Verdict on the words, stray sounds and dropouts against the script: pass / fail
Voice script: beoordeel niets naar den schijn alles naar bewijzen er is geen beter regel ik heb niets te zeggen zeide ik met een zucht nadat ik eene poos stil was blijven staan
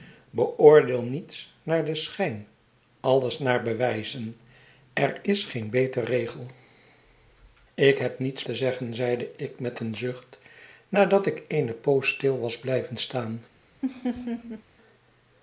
fail